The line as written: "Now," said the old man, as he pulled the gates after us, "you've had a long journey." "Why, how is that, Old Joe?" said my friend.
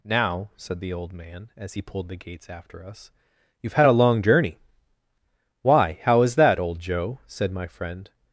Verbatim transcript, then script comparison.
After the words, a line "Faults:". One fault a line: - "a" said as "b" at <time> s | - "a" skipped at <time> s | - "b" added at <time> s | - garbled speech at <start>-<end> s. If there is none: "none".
"Now," said the old man, as he pulled the gates after us, "you've had a long journey." "Why, how is that, Old Joe?" said my friend.
Faults:
none